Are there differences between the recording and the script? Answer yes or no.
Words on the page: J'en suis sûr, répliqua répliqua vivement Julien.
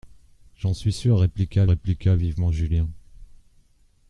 no